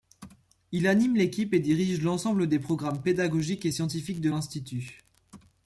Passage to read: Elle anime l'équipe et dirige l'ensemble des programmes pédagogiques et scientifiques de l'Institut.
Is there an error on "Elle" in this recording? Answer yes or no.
yes